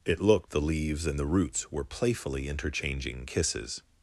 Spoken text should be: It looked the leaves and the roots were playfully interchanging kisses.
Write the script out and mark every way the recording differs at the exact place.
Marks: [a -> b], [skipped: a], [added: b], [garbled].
It looked the leaves and the roots were playfully interchanging kisses.